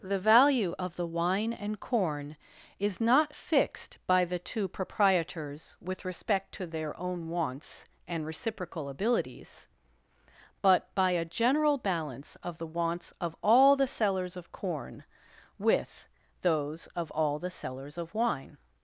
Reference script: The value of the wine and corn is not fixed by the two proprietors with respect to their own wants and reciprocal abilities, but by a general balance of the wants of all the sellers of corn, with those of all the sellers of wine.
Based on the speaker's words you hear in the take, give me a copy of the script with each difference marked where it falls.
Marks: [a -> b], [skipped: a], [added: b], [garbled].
The value of the wine and corn is not fixed by the two proprietors with respect to their own wants and reciprocal abilities, but by a general balance of the wants of all the sellers of corn, with those of all the sellers of wine.